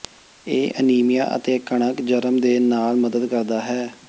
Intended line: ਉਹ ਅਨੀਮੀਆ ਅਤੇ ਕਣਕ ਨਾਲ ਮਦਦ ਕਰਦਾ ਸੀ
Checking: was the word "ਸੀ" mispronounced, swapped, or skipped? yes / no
yes